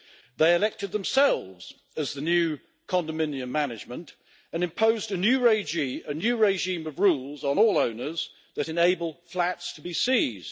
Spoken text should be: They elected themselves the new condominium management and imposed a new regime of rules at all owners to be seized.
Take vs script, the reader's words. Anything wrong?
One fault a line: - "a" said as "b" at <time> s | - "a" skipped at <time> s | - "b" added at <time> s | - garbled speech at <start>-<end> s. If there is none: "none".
- "as" added at 1.9 s
- "at" said as "on" at 7.4 s
- "that enable flats" added at 8.5 s